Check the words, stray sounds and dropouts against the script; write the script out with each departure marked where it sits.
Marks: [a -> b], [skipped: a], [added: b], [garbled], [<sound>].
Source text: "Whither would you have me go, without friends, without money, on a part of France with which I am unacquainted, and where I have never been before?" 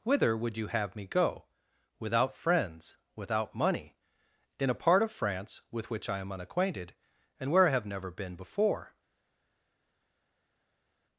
"Whither would you have me go, without friends, without money, [on -> in] a part of France with which I am unacquainted, and where I have never been before?"